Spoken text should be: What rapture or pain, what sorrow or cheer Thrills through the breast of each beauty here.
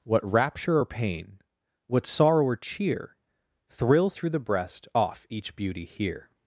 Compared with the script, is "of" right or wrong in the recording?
wrong